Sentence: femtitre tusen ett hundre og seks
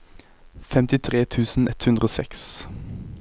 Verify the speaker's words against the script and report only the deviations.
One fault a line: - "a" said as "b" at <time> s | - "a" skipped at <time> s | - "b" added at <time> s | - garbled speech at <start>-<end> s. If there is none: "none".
none